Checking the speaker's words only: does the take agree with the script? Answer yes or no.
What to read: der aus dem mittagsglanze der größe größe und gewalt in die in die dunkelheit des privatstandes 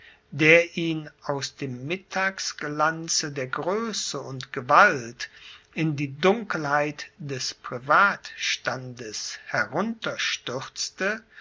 no